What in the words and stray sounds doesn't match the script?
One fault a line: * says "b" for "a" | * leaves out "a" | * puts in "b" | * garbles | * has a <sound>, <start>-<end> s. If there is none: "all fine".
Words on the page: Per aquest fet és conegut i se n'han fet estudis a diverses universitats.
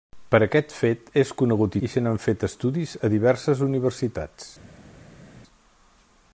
all fine